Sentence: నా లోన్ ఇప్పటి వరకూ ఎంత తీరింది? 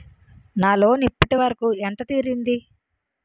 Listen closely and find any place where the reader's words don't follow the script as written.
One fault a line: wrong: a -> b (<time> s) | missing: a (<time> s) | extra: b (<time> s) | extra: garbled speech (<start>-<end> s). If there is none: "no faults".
no faults